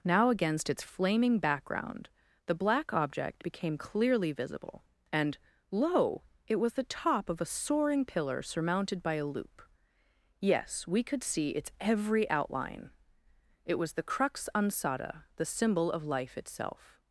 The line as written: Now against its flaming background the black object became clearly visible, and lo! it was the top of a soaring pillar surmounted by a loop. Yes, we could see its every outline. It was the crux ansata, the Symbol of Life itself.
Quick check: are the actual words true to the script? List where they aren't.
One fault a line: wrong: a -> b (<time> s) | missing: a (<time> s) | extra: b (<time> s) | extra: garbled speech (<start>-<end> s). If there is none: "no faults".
no faults